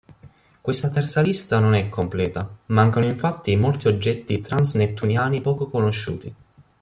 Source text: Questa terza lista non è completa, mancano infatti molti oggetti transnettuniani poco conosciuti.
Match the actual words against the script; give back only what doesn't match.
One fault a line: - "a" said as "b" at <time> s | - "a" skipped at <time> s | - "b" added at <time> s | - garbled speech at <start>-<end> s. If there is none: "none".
none